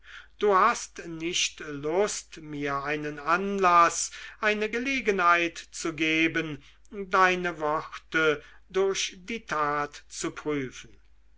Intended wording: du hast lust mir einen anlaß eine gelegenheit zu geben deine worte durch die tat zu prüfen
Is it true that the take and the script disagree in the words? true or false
true